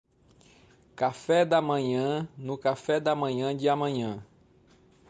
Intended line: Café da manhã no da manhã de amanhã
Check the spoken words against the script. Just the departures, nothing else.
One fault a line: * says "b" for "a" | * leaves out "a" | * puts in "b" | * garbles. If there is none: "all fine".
* puts in "café"